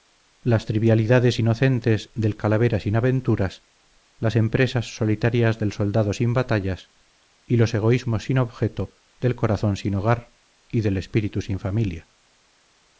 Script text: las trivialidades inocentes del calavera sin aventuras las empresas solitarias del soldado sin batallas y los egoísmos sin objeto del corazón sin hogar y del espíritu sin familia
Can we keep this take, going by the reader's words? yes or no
yes